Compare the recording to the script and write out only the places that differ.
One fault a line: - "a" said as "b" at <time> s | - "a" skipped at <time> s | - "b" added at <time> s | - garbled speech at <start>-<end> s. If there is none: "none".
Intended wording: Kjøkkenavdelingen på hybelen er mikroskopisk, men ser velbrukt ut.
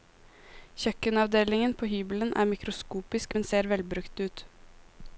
none